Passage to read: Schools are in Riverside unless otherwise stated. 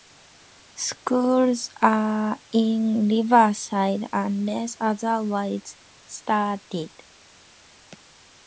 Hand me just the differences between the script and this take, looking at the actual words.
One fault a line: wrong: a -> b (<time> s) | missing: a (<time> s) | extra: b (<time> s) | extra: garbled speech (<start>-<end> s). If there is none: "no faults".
no faults